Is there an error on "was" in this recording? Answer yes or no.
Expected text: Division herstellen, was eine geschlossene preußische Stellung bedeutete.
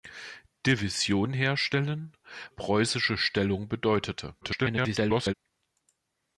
yes